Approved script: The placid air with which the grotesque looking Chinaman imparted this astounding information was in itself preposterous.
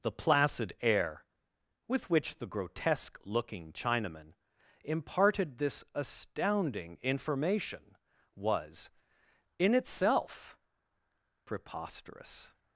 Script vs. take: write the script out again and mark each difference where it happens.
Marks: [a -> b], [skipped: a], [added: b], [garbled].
The placid air with which the grotesque looking Chinaman imparted this astounding information was in itself preposterous.